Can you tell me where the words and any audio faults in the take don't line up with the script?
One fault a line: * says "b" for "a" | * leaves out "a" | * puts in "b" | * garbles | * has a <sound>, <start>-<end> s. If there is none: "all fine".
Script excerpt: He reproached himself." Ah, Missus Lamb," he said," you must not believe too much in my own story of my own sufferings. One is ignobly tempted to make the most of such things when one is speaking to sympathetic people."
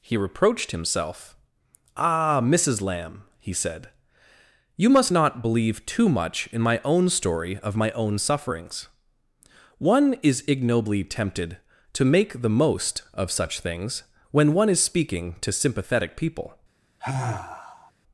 * has a sigh, 17.0-17.9 s